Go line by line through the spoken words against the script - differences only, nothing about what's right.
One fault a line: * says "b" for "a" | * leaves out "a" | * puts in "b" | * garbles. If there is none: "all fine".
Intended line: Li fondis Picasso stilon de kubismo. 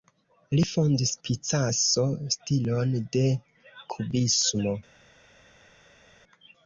all fine